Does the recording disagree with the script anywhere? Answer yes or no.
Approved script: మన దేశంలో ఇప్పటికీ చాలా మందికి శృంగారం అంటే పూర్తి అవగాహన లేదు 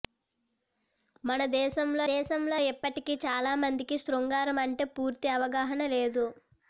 yes